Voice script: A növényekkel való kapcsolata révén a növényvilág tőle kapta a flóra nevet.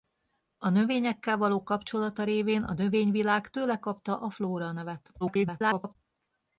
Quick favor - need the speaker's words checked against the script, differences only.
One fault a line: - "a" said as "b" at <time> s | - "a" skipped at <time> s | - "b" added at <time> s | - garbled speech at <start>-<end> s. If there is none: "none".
- garbled speech at 5.2-6.0 s